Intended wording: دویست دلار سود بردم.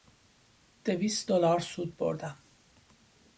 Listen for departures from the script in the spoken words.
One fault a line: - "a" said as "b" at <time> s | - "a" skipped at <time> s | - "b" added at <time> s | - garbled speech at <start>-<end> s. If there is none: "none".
none